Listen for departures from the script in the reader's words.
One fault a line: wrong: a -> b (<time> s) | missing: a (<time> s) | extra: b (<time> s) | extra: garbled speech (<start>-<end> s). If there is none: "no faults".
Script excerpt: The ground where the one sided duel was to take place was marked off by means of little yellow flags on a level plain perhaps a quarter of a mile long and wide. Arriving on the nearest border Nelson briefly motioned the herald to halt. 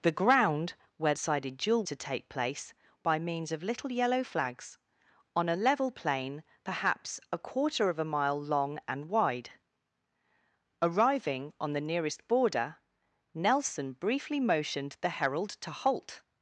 missing: the one (1.1 s)
missing: was (1.8 s)
missing: was marked off (2.7 s)